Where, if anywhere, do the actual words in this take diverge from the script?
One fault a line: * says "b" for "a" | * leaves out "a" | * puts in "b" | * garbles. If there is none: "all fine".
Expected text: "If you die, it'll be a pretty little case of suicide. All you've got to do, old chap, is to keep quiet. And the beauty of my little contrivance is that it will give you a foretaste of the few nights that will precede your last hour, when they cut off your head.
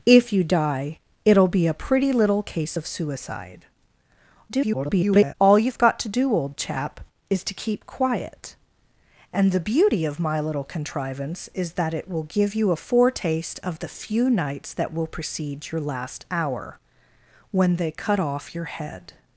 * garbles